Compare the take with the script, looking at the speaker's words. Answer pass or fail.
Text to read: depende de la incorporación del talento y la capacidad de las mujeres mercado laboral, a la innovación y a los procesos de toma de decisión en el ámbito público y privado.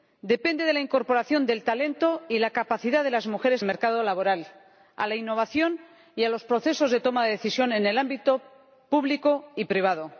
pass